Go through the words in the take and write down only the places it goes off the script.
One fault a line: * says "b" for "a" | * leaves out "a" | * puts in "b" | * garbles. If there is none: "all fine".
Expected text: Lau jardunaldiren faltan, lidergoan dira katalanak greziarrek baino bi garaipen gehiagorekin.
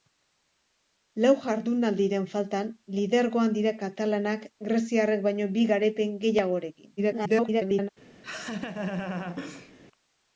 * garbles